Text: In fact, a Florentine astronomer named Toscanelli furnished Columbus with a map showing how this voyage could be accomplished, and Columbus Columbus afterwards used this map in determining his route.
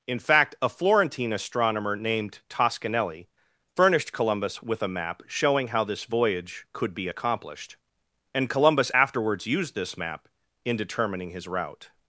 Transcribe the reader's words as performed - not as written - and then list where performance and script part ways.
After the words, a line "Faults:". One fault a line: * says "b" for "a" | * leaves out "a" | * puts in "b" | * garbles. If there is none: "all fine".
In fact, a Florentine astronomer named Toscanelli furnished Columbus with a map showing how this voyage could be accomplished, and Columbus afterwards used this map in determining his route.
Faults:
* leaves out "Columbus"